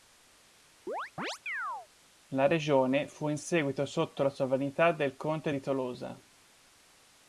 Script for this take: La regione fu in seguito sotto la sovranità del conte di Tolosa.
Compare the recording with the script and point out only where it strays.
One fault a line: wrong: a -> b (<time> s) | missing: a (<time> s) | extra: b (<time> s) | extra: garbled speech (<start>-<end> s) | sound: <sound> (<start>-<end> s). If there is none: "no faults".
sound: chirp (0.9-1.9 s)